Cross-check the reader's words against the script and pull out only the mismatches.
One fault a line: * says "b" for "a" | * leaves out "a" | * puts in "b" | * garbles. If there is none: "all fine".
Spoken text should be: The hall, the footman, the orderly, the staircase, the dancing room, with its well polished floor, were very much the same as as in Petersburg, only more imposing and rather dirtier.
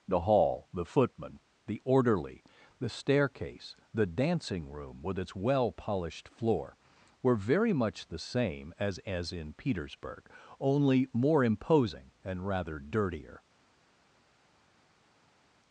all fine